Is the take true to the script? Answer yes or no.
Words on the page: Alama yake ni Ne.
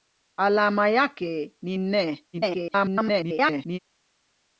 no